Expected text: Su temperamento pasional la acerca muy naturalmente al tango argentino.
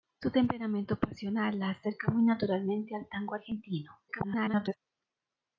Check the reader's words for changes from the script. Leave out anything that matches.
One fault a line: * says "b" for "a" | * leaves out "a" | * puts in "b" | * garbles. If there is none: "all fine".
* garbles